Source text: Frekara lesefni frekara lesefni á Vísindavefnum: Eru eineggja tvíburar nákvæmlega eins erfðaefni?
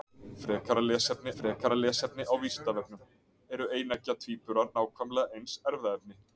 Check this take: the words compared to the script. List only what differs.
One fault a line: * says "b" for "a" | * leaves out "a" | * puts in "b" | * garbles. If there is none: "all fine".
all fine